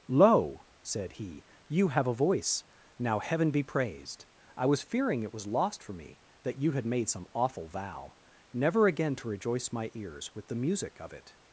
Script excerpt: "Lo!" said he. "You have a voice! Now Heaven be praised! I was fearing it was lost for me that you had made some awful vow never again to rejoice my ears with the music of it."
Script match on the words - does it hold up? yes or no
yes